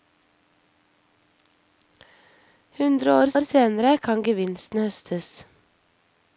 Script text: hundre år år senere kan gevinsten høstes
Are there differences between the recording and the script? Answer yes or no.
no